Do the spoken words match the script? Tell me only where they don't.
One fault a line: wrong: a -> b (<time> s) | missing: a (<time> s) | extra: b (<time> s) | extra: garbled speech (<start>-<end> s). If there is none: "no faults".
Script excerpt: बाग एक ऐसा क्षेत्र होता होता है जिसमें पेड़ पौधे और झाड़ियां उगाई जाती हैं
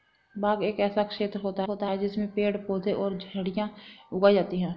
no faults